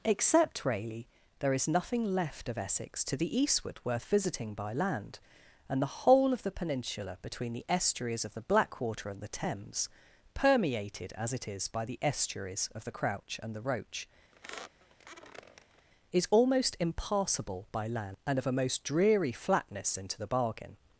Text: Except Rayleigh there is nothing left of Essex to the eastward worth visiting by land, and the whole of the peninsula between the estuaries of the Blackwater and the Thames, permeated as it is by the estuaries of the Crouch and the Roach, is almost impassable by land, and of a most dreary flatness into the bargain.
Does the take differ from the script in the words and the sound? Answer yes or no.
yes